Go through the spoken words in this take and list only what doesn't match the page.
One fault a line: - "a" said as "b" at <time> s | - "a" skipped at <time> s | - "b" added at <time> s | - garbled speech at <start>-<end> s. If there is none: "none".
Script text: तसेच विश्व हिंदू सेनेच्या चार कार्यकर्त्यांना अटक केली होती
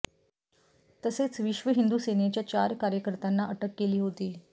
none